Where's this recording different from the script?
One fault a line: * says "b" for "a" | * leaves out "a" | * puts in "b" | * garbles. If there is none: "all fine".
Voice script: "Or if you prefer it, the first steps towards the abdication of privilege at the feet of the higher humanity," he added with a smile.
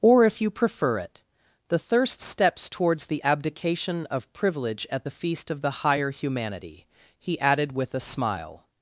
* says "thirst" for "first"
* says "feast" for "feet"